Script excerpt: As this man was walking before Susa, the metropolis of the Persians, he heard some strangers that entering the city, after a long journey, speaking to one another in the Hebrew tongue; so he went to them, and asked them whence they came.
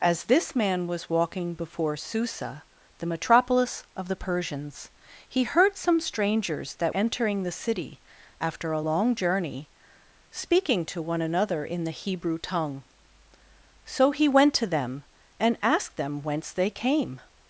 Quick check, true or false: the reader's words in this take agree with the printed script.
true